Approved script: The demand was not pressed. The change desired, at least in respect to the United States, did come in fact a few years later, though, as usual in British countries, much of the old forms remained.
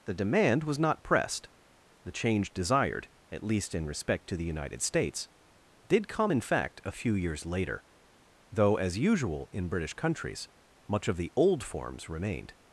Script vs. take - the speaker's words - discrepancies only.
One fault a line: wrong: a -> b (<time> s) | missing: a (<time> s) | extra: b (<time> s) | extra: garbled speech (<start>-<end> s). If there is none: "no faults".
no faults